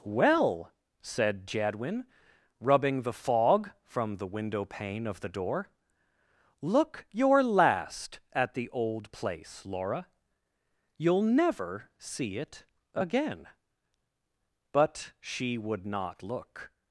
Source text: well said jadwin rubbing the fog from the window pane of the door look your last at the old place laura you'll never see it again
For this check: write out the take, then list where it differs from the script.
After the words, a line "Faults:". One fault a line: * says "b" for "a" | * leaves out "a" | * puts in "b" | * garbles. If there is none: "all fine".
well said jadwin rubbing the fog from the window pane of the door look your last at the old place laura you'll never see it again but she would not look
Faults:
* puts in "but she would not look"